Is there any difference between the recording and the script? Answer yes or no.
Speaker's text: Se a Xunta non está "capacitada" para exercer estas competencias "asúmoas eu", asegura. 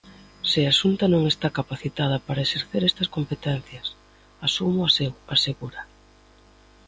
no